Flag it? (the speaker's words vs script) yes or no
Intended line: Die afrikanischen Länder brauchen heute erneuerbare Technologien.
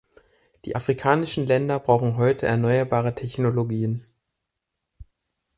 no